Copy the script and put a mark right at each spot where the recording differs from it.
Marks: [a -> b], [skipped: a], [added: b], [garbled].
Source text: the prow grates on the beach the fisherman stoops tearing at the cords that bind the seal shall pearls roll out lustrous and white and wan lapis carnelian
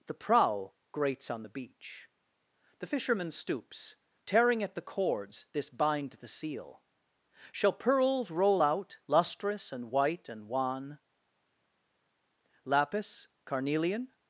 the prow grates on the beach the fisherman stoops tearing at the cords [that -> this] bind the seal shall pearls roll out lustrous and white and wan lapis carnelian